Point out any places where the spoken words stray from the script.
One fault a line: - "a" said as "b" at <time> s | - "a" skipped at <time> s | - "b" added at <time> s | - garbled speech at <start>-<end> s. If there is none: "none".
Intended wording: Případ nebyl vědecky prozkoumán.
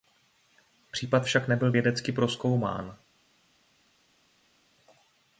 - "však" added at 1.2 s